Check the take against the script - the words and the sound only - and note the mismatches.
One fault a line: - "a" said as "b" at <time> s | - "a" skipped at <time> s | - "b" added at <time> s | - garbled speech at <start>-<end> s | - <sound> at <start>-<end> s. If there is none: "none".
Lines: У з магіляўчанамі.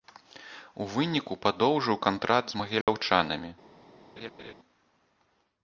- "выніку падоўжыў кантракт" added at 0.9 s
- dropout at 2.8-2.9 s
- laugh at 4.2-4.5 s